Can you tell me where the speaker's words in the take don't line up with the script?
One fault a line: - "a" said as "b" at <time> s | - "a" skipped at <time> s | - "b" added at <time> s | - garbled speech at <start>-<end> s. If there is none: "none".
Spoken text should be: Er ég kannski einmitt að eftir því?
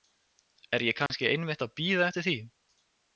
- "bíða" added at 1.8 s